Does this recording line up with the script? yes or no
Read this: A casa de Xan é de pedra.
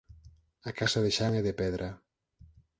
yes